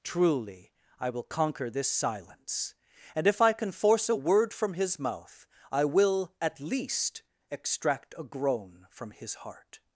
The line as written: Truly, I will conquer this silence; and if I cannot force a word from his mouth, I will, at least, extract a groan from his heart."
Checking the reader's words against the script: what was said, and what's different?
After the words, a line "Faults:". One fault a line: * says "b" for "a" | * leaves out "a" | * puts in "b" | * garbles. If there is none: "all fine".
Truly, I will conquer this silence; and if I can force a word from his mouth, I will, at least, extract a groan from his heart."
Faults:
* says "can" for "cannot"